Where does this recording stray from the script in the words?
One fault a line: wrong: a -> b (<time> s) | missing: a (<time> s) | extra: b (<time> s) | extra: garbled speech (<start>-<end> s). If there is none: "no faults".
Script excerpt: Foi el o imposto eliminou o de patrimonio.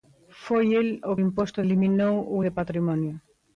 no faults